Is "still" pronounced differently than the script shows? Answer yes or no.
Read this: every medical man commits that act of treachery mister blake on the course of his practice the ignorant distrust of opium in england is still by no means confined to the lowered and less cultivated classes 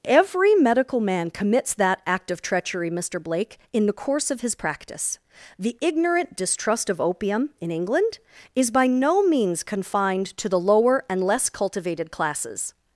yes